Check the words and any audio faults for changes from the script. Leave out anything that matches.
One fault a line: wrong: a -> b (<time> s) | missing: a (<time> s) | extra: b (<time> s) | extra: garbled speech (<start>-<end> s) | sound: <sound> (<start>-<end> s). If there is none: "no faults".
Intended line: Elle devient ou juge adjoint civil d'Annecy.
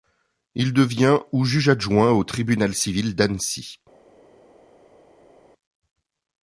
wrong: Elle -> Il (0.6 s)
extra: au tribunal (2.1 s)